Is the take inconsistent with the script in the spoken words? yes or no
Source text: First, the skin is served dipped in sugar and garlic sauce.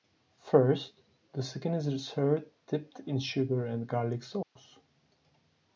no